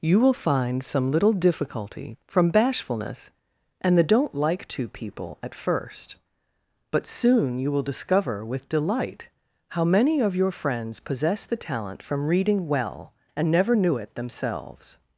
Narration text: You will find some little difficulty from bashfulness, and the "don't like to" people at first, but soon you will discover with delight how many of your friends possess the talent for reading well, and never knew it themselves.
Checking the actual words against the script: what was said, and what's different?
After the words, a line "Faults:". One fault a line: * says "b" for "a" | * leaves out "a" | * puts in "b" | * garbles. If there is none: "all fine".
You will find some little difficulty from bashfulness, and the "don't like to" people at first, but soon you will discover with delight how many of your friends possess the talent from reading well, and never knew it themselves.
Faults:
* says "from" for "for"